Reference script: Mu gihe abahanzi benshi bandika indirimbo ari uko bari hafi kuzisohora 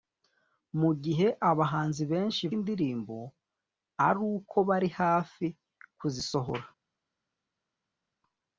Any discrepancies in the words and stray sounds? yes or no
yes